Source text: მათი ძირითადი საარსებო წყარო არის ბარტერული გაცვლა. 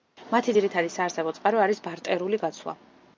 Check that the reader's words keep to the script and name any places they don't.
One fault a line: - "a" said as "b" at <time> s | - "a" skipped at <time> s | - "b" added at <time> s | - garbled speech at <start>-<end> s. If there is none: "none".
none